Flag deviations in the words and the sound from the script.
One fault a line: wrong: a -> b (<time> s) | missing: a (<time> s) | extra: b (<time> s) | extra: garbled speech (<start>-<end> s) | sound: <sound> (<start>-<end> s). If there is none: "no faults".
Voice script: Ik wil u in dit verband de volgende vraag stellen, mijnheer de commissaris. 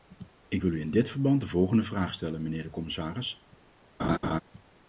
sound: laugh (4.0-4.4 s)